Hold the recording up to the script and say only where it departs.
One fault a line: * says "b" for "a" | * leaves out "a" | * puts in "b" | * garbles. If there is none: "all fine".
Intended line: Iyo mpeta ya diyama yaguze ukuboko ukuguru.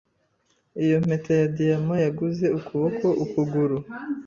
all fine